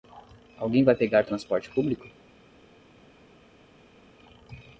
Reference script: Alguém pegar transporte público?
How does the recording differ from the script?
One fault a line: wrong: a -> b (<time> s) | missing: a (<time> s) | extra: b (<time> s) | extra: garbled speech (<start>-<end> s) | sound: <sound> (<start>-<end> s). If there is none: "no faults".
extra: vai (0.8 s)